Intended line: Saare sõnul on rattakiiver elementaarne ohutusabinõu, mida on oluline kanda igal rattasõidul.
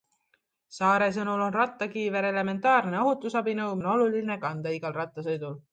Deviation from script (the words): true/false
true